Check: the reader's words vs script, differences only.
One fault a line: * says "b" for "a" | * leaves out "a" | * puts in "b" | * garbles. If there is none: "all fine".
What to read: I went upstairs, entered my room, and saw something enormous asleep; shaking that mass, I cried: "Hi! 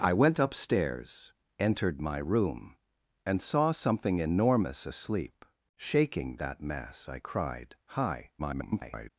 * garbles